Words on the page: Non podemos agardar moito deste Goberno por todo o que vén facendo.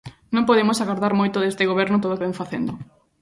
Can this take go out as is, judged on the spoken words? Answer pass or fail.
fail